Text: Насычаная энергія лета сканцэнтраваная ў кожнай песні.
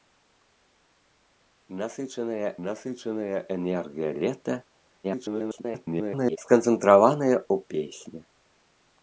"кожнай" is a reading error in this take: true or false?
true